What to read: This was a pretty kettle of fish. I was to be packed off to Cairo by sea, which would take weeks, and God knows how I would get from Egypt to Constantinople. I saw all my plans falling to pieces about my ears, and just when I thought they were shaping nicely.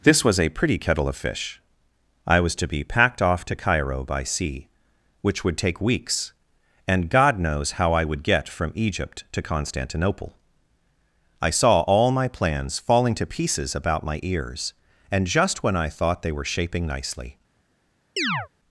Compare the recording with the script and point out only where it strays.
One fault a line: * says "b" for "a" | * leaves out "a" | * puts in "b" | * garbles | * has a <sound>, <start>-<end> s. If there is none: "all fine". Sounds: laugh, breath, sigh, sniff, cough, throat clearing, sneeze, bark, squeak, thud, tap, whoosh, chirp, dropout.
* has a chirp, 18.2-18.5 s